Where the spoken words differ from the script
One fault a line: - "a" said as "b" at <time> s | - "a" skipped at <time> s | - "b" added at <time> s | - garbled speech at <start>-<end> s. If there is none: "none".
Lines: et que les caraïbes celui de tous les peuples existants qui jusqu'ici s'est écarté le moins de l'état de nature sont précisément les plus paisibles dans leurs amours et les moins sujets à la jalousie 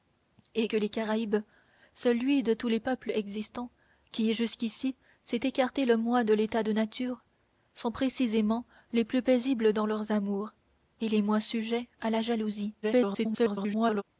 - garbled speech at 12.8-14.0 s